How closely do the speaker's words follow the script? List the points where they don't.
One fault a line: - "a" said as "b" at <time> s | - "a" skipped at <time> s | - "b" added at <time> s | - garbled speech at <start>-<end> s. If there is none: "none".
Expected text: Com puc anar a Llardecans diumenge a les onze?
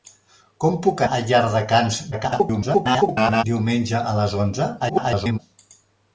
- "anar" skipped at 1.0 s
- garbled speech at 2.1-3.4 s
- garbled speech at 4.8-5.4 s